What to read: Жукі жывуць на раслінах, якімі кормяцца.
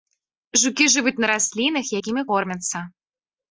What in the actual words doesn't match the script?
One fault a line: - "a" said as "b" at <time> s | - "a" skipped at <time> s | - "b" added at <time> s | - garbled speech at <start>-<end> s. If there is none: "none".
none